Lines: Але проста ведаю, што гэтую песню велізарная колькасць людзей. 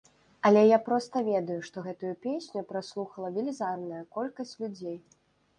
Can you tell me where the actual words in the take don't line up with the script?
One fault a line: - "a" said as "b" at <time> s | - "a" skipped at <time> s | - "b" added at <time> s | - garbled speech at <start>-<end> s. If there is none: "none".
- "я" added at 0.7 s
- "праслухала" added at 2.7 s